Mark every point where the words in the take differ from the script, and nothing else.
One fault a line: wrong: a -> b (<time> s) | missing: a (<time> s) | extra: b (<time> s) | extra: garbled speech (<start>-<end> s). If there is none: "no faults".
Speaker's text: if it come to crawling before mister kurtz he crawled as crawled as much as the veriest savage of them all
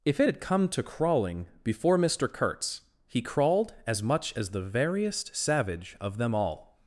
extra: had (0.3 s)
missing: crawled as (4.0 s)